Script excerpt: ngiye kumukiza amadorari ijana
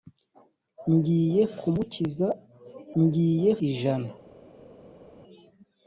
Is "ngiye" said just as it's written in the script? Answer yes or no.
yes